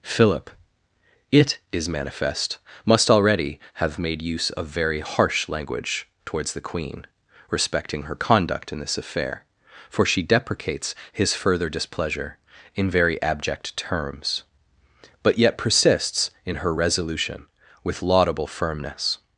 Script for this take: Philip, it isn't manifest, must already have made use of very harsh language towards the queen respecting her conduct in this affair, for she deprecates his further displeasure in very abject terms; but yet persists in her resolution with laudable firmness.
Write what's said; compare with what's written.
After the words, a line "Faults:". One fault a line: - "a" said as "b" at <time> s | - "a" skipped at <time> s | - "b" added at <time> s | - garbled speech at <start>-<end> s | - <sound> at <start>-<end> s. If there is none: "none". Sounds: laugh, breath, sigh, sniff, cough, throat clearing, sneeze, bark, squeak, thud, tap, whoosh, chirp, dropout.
Philip, it is manifest, must already have made use of very harsh language towards the queen respecting her conduct in this affair, for she deprecates his further displeasure in very abject terms; but yet persists in her resolution with laudable firmness.
Faults:
- "isn't" said as "is" at 1.7 s